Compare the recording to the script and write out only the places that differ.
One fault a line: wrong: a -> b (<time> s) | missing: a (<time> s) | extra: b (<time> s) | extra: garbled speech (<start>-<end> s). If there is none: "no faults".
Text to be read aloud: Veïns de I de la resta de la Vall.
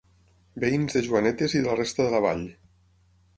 extra: Joanetes (1.1 s)